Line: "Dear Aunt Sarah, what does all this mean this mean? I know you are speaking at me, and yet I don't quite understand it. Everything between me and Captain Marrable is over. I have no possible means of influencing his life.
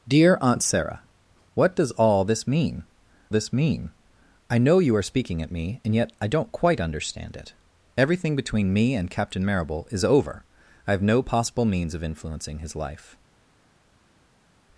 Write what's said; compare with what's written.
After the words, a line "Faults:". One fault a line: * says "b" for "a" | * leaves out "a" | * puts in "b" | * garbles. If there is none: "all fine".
"Dear Aunt Sarah, what does all this mean this mean? I know you are speaking at me, and yet I don't quite understand it. Everything between me and Captain Marrable is over. I have no possible means of influencing his life.
Faults:
all fine